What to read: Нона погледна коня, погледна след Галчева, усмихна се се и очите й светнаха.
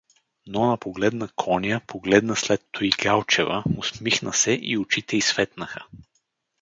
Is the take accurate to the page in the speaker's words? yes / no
no